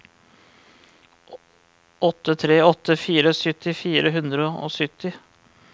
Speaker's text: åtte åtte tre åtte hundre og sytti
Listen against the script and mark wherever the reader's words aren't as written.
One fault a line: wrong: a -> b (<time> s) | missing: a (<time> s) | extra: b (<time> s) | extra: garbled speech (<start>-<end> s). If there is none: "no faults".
extra: tre (2.4 s)
wrong: tre åtte -> fire sytti fire (3.0 s)